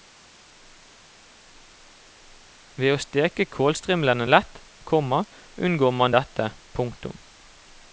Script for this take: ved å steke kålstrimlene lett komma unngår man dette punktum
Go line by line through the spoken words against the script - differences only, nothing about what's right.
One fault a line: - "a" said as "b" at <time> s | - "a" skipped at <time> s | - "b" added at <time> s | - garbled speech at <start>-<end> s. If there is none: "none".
none